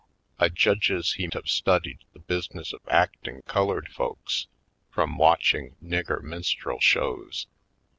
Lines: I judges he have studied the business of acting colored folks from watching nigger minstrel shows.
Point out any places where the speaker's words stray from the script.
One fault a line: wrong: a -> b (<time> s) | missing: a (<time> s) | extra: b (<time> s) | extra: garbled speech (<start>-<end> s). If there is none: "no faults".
no faults